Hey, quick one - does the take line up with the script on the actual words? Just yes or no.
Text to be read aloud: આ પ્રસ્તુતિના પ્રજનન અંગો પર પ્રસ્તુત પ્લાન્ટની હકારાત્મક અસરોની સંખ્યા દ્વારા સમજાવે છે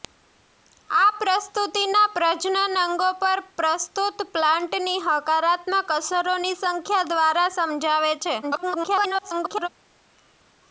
no